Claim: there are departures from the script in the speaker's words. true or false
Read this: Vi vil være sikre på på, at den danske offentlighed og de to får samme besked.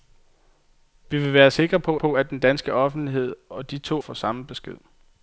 false